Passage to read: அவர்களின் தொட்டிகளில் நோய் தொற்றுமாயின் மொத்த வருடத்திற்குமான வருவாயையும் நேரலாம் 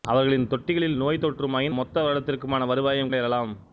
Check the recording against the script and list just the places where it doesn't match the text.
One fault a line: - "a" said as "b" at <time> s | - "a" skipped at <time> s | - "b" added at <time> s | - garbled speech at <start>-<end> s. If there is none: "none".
none